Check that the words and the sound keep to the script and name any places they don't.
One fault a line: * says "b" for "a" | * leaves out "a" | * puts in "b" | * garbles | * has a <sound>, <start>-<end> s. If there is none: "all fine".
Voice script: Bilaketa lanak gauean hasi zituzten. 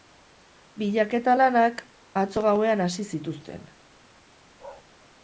* puts in "atzo"
* has a bark, 4.6-4.8 s